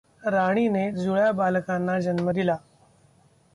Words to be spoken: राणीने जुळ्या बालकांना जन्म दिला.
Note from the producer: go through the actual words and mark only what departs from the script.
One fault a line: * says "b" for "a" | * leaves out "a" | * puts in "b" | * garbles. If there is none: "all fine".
all fine